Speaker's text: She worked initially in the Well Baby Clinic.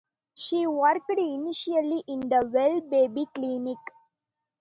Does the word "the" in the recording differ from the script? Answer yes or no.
no